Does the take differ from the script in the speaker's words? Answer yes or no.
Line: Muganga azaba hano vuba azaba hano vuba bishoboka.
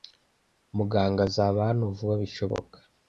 yes